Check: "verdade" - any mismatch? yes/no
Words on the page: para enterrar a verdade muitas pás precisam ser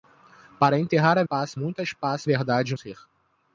yes